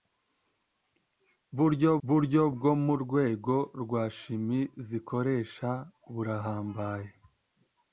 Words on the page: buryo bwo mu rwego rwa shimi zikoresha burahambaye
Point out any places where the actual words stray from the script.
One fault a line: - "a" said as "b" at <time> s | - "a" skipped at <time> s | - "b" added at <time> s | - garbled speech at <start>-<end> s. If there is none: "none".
- "buryo" added at 2.1 s